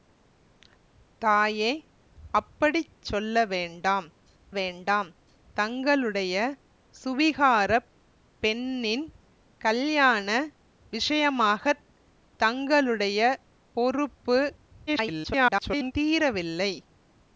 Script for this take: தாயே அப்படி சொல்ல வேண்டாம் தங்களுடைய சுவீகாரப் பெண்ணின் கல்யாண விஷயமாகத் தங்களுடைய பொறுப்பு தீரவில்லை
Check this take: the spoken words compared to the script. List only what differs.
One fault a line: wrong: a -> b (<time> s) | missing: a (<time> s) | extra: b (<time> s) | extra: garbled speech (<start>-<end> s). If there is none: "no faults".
extra: வேண்டாம் (4.5 s)
extra: garbled speech (14.9-15.9 s)